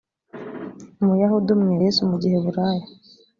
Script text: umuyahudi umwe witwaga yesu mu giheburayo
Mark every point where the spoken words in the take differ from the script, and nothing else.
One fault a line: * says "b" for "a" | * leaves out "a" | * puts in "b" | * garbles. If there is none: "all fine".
* leaves out "witwaga"